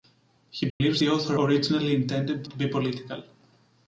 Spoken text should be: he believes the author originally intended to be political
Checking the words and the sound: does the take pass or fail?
fail